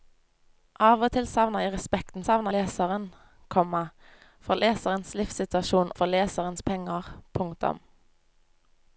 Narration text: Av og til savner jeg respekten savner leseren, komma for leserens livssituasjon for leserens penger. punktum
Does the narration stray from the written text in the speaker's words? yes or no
no